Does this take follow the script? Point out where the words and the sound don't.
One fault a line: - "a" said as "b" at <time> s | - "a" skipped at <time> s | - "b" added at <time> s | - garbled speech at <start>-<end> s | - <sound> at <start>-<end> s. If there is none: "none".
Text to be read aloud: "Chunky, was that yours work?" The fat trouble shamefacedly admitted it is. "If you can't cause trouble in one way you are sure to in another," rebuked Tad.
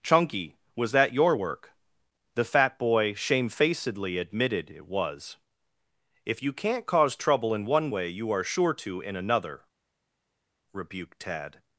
- "yours" said as "your" at 1.1 s
- "trouble" said as "boy" at 2.8 s
- "is" said as "was" at 4.9 s